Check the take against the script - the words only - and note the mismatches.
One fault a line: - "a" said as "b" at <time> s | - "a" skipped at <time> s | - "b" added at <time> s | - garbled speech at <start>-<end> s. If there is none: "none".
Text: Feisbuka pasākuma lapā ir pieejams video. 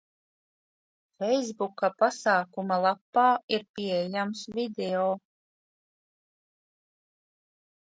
none